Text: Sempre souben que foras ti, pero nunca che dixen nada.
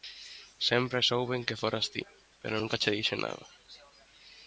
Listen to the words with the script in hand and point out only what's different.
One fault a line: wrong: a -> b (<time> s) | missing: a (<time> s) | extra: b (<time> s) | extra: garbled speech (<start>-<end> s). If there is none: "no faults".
no faults